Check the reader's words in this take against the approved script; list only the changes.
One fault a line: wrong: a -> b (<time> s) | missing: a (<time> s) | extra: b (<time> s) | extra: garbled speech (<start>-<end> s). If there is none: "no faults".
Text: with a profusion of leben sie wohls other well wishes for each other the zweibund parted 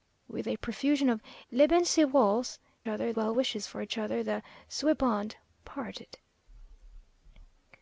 no faults